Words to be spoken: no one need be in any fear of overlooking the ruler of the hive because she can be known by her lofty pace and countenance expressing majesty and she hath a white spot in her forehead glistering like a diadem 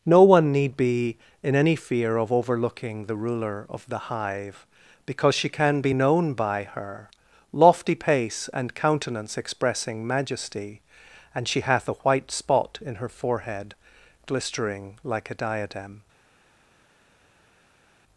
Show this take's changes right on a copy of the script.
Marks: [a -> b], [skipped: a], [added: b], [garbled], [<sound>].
no one need be in any fear of overlooking the ruler of the hive because she can be known by her lofty pace and countenance expressing majesty and she hath a white spot in her forehead glistering like a diadem